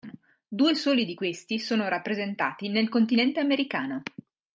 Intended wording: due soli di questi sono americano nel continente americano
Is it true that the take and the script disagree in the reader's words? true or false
true